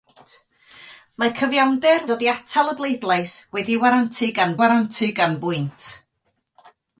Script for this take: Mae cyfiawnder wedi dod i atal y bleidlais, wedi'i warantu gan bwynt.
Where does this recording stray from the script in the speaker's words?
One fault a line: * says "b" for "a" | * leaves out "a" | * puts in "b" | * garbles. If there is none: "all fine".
* leaves out "wedi"
* puts in "warantu gan"